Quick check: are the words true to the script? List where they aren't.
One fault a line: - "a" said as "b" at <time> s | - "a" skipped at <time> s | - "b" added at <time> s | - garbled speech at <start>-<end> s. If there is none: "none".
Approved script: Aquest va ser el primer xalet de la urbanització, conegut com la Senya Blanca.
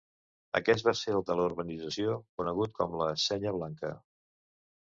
- "primer xalet" skipped at 1.2 s